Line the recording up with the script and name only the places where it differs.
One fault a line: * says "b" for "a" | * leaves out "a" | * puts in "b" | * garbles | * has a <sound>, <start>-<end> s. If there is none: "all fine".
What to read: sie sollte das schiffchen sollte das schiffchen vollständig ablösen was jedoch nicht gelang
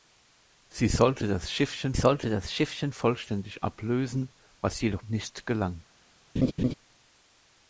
* has a laugh, 6.4-6.7 s